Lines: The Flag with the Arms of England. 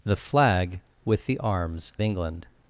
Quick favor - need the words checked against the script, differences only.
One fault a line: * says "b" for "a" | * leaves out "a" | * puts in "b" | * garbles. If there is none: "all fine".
* leaves out "of"